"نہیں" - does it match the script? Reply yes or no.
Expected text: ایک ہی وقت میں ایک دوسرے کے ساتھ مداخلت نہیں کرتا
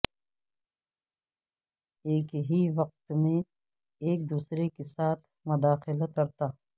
no